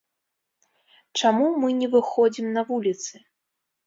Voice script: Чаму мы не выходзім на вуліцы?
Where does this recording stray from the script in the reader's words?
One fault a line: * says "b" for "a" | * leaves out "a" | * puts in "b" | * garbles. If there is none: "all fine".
all fine